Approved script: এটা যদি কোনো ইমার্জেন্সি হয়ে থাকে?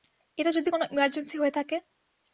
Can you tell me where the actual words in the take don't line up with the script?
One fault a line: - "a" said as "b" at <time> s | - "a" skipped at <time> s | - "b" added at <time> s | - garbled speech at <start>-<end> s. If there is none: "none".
none